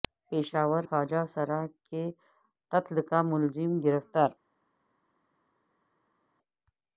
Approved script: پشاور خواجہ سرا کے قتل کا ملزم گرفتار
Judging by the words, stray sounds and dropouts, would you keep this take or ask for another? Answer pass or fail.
pass